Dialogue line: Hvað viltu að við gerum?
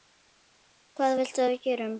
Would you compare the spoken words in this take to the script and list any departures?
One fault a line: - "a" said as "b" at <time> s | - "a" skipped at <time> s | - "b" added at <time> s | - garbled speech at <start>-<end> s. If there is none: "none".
none